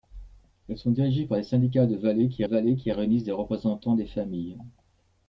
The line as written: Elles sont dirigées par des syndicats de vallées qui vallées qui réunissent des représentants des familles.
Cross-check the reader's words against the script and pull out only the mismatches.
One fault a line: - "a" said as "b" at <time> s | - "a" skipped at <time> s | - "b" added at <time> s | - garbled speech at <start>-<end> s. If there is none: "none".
none